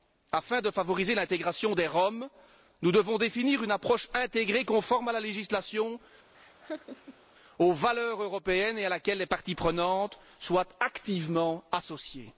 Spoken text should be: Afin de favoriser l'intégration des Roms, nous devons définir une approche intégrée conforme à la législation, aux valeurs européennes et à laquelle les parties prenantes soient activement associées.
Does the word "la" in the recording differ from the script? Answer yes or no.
no